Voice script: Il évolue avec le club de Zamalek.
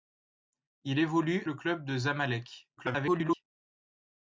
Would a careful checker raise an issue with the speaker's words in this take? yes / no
yes